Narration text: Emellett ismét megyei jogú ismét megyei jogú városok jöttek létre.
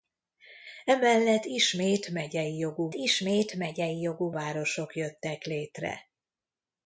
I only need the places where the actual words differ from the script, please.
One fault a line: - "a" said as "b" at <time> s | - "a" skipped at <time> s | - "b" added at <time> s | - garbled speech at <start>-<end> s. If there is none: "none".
none